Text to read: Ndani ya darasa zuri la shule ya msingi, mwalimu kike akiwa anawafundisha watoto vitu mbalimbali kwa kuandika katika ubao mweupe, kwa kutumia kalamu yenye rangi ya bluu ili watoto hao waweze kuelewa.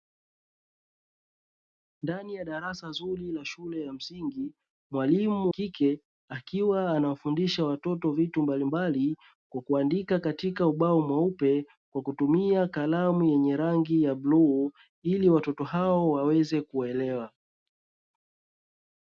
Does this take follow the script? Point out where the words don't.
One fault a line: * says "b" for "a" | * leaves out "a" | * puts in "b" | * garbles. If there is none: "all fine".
all fine